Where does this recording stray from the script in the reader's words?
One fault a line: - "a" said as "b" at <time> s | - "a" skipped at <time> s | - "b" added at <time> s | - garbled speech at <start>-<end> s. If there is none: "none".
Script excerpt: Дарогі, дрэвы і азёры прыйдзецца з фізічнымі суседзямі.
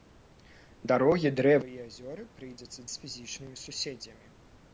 none